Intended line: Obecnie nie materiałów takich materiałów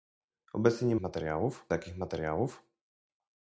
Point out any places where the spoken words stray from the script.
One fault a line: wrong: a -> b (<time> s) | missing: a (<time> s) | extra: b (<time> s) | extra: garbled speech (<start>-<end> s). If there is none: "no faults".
no faults